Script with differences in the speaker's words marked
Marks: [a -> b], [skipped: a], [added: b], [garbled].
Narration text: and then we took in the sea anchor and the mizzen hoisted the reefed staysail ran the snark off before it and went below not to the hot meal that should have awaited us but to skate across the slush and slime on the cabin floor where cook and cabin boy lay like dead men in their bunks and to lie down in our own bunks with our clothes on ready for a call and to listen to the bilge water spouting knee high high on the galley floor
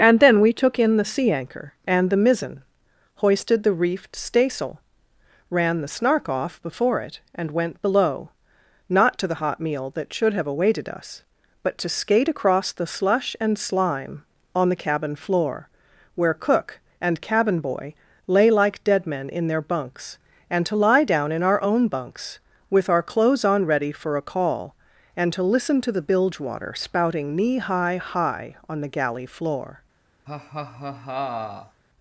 and then we took in the sea anchor and the mizzen hoisted the reefed staysail ran the snark off before it and went below not to the hot meal that should have awaited us but to skate across the slush and slime on the cabin floor where cook and cabin boy lay like dead men in their bunks and to lie down in our own bunks with our clothes on ready for a call and to listen to the bilge water spouting knee high high on the galley floor